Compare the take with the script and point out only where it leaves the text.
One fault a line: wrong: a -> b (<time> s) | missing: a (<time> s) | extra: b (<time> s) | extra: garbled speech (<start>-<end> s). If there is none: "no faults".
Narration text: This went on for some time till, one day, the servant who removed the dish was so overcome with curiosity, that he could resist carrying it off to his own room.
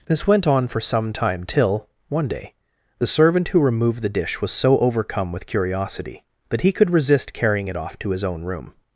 no faults